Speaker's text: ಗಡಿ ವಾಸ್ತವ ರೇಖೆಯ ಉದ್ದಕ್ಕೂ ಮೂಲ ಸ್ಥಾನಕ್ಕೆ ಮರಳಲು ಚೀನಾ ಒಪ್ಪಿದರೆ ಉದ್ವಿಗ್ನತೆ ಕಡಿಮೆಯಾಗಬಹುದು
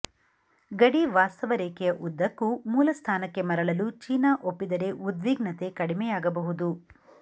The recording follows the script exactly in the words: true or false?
true